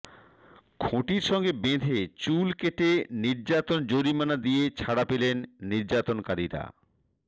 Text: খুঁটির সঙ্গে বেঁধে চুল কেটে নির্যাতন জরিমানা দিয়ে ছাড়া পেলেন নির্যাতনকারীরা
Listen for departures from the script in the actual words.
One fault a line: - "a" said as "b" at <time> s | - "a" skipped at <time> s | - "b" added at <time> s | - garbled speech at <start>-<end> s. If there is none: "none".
none